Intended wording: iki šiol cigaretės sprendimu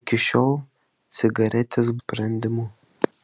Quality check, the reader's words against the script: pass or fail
pass